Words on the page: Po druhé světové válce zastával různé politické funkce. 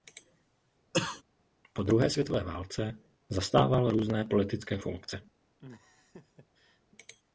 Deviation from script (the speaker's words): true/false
false